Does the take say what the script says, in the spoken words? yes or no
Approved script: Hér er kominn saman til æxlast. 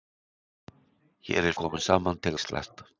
yes